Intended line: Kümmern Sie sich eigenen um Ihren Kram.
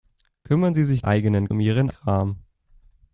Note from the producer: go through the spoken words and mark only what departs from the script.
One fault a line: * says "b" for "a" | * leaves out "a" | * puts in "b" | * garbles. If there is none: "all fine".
all fine